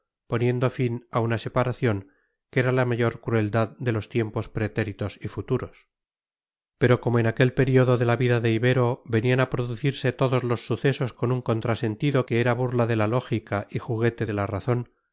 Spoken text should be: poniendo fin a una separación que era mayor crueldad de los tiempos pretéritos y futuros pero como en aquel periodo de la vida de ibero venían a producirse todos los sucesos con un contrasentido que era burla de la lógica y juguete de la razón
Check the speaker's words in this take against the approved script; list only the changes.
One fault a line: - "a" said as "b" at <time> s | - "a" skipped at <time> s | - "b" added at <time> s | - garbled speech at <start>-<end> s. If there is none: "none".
- "la" added at 2.7 s